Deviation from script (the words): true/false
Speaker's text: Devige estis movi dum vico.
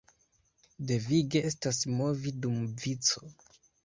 true